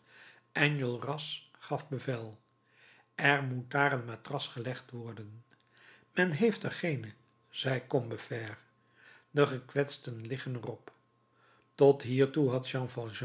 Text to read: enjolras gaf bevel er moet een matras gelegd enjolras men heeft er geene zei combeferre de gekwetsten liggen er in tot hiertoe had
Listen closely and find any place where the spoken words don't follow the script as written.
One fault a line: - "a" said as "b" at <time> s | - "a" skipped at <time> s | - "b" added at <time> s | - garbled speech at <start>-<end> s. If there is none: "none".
- "daar" added at 3.7 s
- "enjolras" said as "worden" at 4.9 s
- "in" said as "op" at 10.7 s